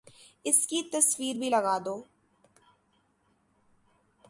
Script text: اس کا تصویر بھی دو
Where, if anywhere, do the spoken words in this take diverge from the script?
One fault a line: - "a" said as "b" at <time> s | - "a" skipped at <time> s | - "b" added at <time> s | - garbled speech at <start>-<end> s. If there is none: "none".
- "کا" said as "کی" at 0.7 s
- "لگا" added at 1.5 s